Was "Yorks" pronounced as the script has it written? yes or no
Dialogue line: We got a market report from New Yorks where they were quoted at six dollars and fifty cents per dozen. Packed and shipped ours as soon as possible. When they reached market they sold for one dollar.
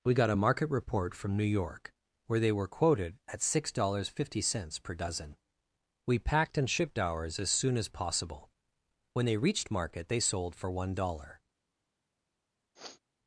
no